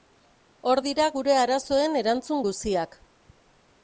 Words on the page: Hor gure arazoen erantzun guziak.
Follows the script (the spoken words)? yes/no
no